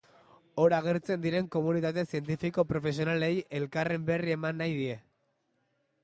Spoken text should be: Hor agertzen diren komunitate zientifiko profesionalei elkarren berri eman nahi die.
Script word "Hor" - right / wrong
right